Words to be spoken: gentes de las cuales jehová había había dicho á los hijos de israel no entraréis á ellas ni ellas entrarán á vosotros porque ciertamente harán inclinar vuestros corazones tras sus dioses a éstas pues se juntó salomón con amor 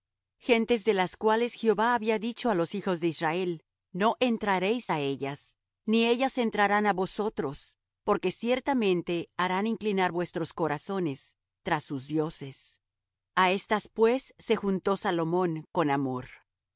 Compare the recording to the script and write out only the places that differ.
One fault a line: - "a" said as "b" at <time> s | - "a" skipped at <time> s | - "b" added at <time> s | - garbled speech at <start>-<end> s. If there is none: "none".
- "había" skipped at 2.2 s